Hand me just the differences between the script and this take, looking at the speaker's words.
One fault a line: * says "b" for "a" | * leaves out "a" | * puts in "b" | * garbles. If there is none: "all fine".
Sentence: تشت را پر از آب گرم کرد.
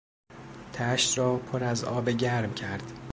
all fine